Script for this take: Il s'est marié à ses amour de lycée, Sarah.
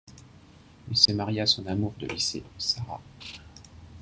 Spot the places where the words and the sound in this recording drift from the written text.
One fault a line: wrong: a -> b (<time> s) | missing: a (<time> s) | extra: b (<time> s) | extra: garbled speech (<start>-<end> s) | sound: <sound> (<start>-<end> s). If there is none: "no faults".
sound: dropout (1.1-1.1 s)
wrong: ses -> son (1.4 s)